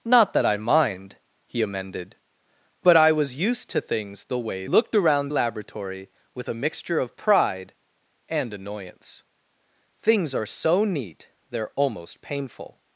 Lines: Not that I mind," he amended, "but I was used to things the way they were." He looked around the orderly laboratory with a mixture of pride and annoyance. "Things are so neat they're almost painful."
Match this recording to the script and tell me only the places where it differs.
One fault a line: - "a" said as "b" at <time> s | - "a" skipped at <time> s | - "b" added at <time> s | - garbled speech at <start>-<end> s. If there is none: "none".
- "they were He" skipped at 4.6 s
- "the orderly" skipped at 5.3 s